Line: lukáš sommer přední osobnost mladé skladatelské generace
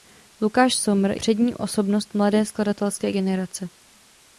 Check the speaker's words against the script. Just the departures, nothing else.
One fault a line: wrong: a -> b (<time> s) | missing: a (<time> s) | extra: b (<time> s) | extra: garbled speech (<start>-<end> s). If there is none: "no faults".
no faults